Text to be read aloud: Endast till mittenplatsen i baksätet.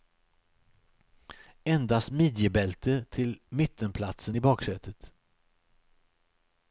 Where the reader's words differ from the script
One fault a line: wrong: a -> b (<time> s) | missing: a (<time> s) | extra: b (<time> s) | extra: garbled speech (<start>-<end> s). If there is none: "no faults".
extra: midjebälte (2.1 s)